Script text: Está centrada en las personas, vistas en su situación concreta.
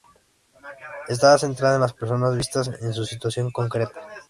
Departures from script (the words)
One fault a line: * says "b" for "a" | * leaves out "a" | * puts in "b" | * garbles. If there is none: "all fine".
all fine